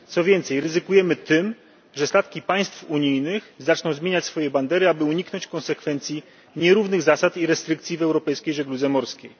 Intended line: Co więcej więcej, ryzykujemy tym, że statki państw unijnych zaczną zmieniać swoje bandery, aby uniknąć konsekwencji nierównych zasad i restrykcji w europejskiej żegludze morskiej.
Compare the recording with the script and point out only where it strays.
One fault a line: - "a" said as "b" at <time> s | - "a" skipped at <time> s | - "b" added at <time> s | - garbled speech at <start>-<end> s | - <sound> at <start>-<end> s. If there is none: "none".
- "więcej" skipped at 0.6 s